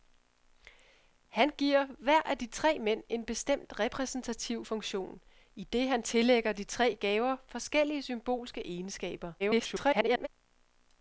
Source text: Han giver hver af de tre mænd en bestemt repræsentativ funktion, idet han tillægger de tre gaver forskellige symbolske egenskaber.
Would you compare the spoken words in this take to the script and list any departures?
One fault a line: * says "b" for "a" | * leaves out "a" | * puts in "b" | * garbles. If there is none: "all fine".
* garbles